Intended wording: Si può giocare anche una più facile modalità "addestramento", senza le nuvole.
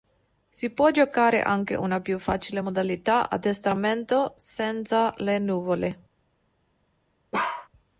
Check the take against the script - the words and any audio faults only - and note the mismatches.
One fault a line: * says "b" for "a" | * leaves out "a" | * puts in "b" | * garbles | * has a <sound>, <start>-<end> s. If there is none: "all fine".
* has a bark, 7.3-7.7 s